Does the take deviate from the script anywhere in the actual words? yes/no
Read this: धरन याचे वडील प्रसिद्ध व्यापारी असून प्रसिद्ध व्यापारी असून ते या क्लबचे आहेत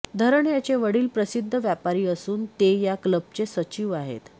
yes